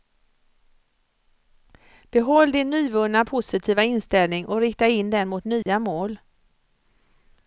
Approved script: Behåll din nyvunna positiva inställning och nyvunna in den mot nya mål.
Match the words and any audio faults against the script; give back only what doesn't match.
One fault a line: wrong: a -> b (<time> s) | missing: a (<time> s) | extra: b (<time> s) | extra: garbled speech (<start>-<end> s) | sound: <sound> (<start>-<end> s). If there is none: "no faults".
wrong: nyvunna -> rikta (4.6 s)
sound: dropout (5.6-5.7 s)